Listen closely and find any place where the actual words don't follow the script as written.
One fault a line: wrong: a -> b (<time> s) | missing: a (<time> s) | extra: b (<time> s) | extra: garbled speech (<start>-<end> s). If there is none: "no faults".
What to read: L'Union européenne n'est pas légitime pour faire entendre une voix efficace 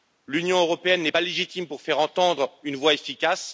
no faults